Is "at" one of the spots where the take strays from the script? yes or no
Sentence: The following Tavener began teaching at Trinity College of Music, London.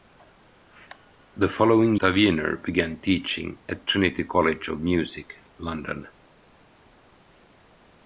no